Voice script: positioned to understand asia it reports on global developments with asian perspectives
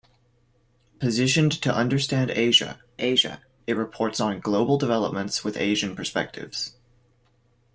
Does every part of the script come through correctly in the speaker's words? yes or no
no